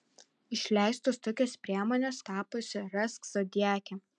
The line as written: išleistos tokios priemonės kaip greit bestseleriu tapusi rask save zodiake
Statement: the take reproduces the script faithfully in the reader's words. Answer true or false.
false